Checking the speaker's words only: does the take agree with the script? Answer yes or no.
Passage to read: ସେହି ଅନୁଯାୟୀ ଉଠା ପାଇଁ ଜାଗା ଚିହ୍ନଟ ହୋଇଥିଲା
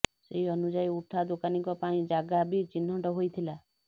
no